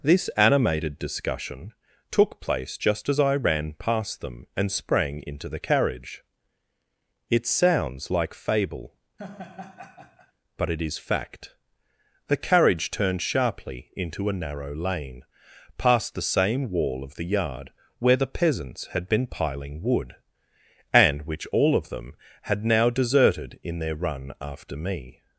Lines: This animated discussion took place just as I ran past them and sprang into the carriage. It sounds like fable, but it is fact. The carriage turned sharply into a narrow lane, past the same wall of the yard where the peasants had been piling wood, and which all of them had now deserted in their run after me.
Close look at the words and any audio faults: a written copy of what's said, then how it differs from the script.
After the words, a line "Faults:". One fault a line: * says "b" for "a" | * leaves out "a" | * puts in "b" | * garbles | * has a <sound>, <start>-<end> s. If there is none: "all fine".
This animated discussion took place just as I ran past them and sprang into the carriage. It sounds like fable, but it is fact. The carriage turned sharply into a narrow lane, past the same wall of the yard where the peasants had been piling wood, and which all of them had now deserted in their run after me.
Faults:
* has a laugh, 9.2-10.3 s